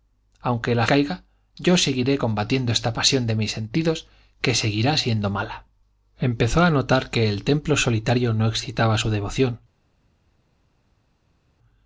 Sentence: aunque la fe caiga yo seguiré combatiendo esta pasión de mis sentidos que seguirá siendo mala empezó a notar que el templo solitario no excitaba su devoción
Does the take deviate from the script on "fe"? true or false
true